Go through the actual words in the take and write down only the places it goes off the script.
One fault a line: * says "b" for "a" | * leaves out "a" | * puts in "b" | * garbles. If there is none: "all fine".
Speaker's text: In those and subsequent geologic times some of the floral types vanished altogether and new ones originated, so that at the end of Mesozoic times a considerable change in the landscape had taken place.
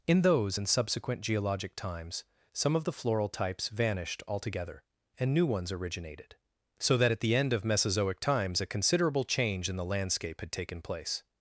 all fine